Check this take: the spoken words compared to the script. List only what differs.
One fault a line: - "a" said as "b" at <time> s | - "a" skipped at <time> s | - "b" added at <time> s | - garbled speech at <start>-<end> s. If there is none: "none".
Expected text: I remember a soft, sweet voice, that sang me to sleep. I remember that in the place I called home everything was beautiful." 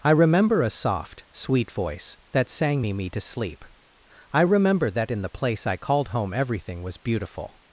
- "me" added at 2.9 s